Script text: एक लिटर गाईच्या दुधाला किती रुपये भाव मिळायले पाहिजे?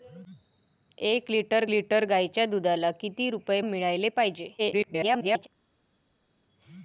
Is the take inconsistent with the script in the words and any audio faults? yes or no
yes